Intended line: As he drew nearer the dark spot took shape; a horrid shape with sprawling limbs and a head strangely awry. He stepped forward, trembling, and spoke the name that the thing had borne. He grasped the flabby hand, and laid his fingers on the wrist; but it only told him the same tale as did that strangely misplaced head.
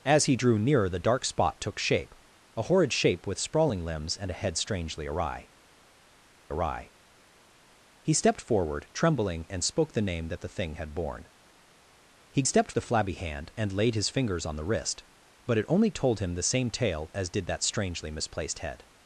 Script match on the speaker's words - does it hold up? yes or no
no